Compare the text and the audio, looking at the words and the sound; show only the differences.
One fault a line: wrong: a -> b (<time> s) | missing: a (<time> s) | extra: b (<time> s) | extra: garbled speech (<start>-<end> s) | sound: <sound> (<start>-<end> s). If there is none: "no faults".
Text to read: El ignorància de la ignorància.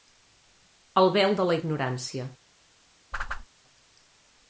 wrong: ignorància -> vel (1.2 s)
sound: whoosh (3.1-3.5 s)